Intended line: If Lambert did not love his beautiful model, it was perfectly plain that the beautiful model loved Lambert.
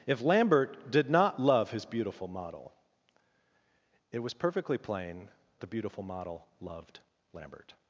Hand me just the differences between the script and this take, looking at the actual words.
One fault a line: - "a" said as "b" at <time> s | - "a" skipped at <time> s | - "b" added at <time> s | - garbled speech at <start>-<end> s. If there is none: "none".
- "that" skipped at 5.3 s